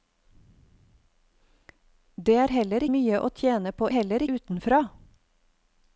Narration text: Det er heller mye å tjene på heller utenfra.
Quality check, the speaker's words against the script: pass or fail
pass